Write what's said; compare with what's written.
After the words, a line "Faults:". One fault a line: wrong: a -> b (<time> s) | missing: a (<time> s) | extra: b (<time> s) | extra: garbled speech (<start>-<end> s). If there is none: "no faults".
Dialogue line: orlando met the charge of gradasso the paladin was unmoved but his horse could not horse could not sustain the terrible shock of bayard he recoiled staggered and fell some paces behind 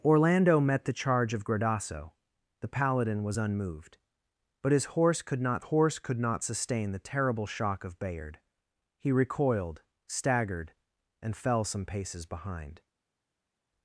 orlando met the charge of gradasso the paladin was unmoved but his horse could not horse could not sustain the terrible shock of bayard he recoiled staggered and fell some paces behind
Faults:
no faults